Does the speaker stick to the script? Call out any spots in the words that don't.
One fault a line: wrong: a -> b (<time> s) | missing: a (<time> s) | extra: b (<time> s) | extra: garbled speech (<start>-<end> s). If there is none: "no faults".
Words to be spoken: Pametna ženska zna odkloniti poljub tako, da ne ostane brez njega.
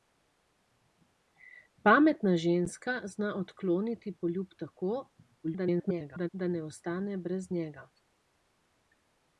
extra: garbled speech (5.4-6.3 s)